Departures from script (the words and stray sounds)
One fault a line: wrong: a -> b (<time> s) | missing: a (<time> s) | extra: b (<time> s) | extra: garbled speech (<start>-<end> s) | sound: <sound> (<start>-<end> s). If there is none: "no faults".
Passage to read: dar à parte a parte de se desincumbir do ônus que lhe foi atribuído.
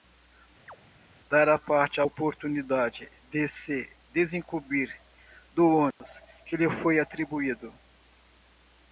sound: chirp (0.7-0.8 s)
wrong: parte -> oportunidade (2.0 s)
sound: dropout (5.9-6.0 s)